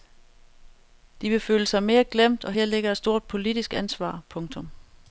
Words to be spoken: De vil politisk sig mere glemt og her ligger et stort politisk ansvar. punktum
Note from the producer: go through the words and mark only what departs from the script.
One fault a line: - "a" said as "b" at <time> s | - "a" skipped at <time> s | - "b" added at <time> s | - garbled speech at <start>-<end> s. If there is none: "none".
- "politisk" said as "føle" at 1.4 s